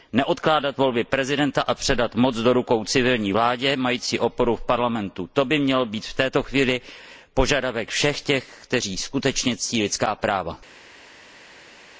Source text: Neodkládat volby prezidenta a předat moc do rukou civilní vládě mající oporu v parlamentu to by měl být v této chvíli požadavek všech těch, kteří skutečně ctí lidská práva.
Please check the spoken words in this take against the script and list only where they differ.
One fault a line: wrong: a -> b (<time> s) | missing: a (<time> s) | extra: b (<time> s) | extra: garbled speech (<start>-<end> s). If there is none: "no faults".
no faults